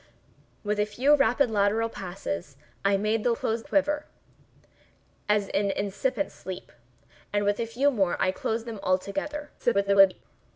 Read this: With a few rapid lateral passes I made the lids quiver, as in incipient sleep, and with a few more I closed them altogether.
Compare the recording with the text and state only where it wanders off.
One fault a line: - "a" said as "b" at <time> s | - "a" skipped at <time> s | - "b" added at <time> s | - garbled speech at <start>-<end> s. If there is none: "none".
- "lids" said as "closed" at 3.3 s
- garbled speech at 9.6-10.2 s